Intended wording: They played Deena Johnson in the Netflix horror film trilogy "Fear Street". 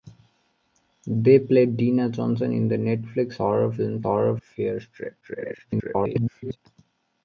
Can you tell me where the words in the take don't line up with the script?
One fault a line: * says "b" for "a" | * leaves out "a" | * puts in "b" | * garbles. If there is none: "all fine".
* says "horror" for "trilogy"
* garbles